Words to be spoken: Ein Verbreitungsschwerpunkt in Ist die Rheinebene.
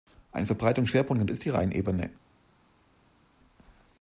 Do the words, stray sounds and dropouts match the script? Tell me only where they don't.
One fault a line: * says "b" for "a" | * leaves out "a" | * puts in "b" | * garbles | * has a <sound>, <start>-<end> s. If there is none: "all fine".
all fine